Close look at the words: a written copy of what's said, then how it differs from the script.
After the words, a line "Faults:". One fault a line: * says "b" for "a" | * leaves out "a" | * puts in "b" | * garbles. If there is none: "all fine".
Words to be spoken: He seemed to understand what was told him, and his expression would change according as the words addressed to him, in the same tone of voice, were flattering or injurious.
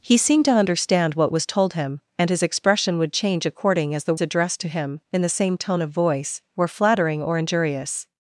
He seemed to understand what was told him, and his expression would change according as the addressed to him, in the same tone of voice, were flattering or injurious.
Faults:
* leaves out "words"